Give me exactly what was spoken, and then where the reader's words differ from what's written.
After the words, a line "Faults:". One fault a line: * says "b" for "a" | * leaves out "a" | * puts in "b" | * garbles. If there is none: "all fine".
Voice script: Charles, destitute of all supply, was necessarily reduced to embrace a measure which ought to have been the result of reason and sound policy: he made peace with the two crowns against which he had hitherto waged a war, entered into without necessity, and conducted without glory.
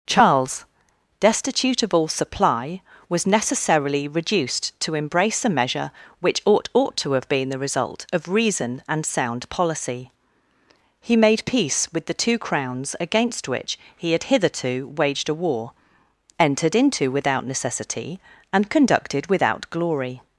Charles, destitute of all supply, was necessarily reduced to embrace a measure which ought ought to have been the result of reason and sound policy: he made peace with the two crowns against which he had hitherto waged a war, entered into without necessity, and conducted without glory.
Faults:
* puts in "ought"